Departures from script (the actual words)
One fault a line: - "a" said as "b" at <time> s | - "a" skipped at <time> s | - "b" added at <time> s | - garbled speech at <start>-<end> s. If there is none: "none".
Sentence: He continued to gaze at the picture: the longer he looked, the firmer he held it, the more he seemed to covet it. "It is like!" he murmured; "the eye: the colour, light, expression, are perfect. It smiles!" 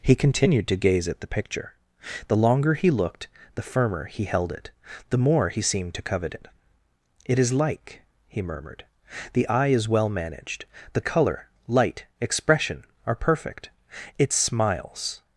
- "is well managed" added at 9.7 s